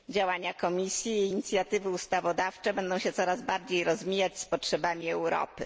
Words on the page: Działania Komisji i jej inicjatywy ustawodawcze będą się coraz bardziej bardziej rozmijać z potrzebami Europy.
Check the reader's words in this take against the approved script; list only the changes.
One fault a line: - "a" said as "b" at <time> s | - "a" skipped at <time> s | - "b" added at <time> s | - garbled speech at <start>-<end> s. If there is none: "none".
- "bardziej" skipped at 3.8 s